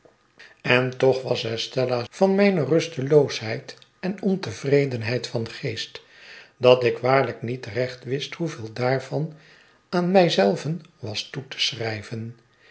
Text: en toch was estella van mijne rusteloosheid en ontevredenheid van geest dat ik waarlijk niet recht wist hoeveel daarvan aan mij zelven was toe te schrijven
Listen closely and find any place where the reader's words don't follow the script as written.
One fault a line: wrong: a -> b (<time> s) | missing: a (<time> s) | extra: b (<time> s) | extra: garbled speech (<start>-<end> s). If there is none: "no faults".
no faults